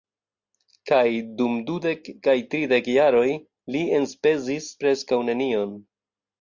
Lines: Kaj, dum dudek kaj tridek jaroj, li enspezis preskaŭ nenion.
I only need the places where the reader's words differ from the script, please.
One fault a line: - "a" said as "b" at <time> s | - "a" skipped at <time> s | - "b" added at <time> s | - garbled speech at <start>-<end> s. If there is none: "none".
none